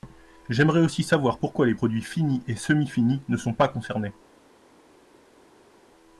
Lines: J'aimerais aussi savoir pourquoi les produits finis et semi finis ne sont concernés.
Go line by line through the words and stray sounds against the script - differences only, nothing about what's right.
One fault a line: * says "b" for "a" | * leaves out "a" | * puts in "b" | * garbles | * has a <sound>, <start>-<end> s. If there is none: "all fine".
* puts in "pas"